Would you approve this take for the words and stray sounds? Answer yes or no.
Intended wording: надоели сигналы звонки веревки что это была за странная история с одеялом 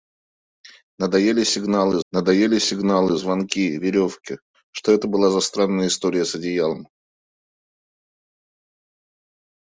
no